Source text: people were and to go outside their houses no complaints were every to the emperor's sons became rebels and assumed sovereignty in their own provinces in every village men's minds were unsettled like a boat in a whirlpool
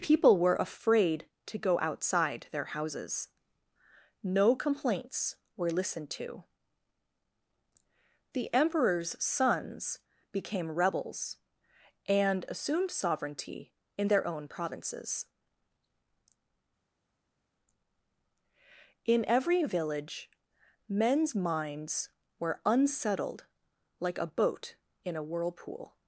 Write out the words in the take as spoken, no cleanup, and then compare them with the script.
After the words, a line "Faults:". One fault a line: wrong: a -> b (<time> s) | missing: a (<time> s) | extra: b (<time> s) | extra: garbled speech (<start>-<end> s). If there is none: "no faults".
people were afraid to go outside their houses no complaints were listened to the emperor's sons became rebels and assumed sovereignty in their own provinces in every village men's minds were unsettled like a boat in a whirlpool
Faults:
wrong: and -> afraid (0.6 s)
wrong: every -> listened (5.7 s)